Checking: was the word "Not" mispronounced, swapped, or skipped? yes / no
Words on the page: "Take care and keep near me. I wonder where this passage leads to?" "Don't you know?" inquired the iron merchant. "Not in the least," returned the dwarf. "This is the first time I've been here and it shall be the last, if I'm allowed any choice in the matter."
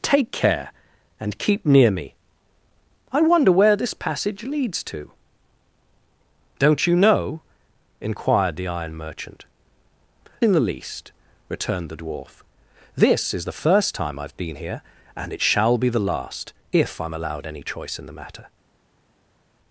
yes